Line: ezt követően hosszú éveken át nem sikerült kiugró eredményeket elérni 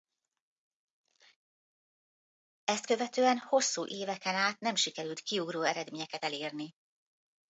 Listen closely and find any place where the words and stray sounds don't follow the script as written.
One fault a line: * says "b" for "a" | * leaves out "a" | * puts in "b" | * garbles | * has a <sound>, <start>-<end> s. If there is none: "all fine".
all fine